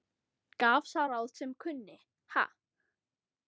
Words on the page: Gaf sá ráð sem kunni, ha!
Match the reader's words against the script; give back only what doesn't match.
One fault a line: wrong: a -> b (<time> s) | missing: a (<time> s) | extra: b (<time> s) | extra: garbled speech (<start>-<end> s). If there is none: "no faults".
no faults